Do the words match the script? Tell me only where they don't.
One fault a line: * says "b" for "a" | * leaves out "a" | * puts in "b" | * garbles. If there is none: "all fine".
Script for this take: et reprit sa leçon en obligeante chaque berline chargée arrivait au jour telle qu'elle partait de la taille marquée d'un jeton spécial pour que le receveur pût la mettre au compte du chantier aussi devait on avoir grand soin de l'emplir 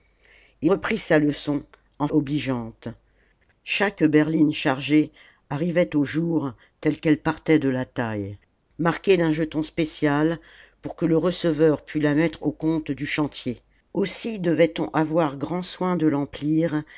all fine